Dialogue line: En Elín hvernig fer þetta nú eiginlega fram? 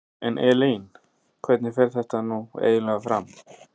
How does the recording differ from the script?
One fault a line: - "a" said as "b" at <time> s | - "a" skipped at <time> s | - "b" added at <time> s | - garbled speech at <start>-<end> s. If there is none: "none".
none